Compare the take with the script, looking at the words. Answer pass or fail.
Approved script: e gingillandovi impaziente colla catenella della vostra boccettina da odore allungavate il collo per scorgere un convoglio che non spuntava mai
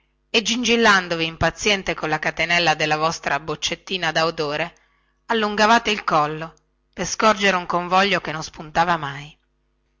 pass